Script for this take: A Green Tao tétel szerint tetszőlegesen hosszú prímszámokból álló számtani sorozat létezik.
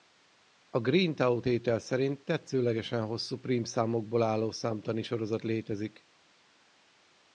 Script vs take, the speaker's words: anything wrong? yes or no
no